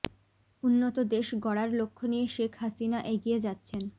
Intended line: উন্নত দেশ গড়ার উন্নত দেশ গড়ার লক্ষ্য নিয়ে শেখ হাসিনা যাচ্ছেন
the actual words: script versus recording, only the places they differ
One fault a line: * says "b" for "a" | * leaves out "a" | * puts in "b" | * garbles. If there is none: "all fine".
* leaves out "উন্নত দেশ গড়ার"
* puts in "এগিয়ে"